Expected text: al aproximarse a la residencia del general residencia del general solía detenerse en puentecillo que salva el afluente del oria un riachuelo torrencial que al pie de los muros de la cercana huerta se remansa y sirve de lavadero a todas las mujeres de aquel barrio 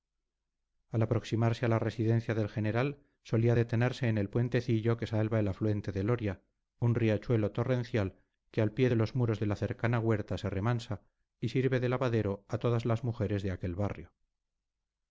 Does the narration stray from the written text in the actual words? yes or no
yes